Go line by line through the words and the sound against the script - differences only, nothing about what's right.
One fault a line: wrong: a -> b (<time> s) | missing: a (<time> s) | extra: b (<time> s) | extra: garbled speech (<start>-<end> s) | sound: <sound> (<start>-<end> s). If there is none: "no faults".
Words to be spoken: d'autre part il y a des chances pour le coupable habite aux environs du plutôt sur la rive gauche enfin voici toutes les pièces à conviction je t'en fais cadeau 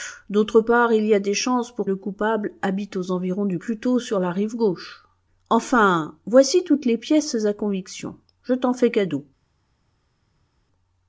no faults